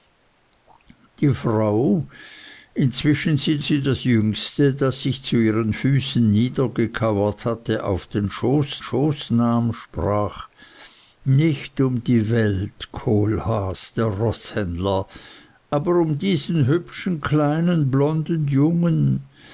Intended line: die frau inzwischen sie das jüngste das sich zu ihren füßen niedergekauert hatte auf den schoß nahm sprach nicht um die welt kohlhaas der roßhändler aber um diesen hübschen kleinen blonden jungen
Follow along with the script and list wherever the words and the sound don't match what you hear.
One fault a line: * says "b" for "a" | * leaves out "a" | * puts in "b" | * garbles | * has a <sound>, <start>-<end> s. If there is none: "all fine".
* puts in "sie"
* puts in "schoß"